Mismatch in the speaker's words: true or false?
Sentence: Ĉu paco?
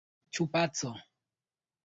false